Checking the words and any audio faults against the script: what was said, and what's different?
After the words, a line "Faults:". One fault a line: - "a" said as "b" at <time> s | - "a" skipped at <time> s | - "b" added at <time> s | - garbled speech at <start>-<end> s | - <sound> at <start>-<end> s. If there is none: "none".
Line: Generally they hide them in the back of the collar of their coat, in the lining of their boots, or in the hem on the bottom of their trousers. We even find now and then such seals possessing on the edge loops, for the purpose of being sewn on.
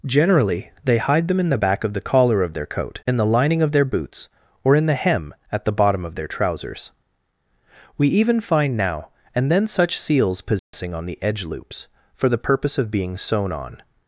Generally they hide them in the back of the collar of their coat, in the lining of their boots, or in the hem at the bottom of their trousers. We even find now and then such seals possessing on the edge loops, for the purpose of being sewn on.
Faults:
- "on" said as "at" at 5.5 s
- dropout at 10.6-10.7 s